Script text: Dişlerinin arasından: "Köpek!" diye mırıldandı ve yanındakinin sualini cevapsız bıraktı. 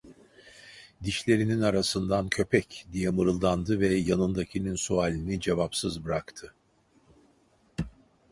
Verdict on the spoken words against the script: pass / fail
pass